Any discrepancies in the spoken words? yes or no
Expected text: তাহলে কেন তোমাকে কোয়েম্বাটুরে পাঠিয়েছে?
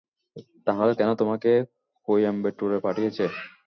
no